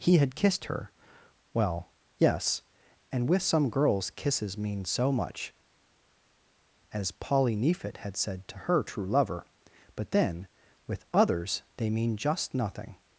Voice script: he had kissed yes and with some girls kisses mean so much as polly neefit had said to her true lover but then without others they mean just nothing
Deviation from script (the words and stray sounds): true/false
true